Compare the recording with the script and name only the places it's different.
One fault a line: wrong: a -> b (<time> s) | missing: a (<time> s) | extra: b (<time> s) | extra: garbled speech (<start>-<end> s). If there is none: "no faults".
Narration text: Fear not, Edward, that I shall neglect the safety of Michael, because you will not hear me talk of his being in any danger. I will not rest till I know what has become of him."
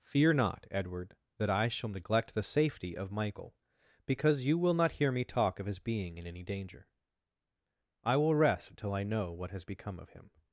missing: not (8.3 s)